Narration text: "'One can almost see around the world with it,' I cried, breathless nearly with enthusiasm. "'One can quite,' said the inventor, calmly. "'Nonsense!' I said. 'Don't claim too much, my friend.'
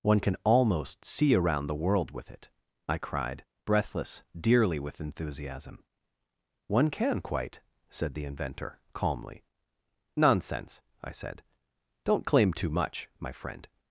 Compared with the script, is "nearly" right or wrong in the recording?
wrong